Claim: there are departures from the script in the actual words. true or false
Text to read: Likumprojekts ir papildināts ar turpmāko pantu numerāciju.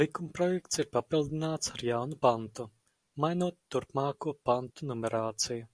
true